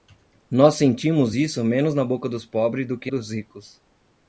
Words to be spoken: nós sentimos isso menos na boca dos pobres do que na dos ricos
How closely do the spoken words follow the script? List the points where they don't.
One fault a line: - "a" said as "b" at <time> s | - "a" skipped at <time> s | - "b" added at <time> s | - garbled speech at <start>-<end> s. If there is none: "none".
- "na" skipped at 3.1 s